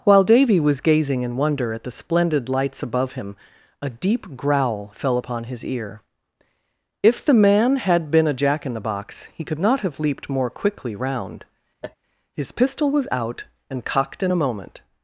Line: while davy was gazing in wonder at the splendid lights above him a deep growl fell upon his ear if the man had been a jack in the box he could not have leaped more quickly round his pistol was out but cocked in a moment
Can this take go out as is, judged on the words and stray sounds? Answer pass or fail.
fail